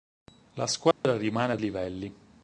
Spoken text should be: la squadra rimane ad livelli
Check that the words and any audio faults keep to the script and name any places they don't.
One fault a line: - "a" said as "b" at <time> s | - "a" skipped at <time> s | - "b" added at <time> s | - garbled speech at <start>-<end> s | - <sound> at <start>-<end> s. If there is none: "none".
- dropout at 0.9-1.0 s